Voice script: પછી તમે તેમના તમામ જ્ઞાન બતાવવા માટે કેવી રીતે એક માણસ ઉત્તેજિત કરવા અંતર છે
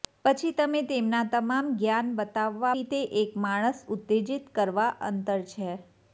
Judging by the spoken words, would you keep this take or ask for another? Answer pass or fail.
fail